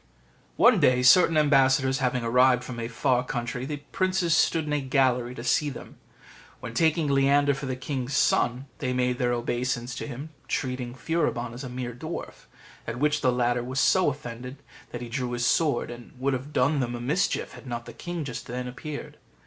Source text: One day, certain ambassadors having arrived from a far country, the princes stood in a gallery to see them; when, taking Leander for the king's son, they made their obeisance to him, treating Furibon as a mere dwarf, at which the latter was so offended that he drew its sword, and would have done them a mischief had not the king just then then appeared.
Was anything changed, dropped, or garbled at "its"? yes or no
yes